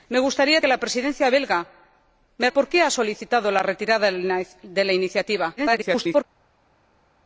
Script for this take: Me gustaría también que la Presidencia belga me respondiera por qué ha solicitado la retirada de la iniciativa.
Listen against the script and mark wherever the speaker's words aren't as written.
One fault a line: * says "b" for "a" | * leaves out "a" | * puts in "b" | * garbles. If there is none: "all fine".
* leaves out "también"
* leaves out "respondiera"
* garbles